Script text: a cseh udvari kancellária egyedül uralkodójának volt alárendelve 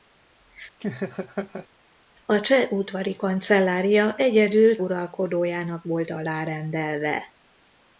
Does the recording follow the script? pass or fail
pass